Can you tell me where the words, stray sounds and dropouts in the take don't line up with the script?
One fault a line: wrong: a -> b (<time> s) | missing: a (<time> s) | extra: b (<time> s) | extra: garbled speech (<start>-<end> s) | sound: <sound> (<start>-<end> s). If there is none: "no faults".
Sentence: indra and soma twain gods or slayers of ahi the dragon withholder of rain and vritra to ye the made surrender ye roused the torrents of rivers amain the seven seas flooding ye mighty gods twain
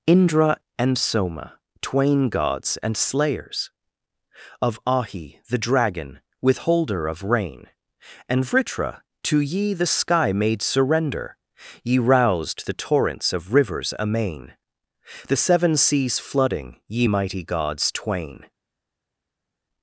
wrong: or -> and (2.8 s)
extra: sky (9.9 s)